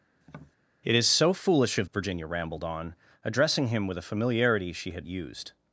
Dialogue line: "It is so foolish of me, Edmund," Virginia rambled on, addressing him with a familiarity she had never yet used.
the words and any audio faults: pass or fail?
fail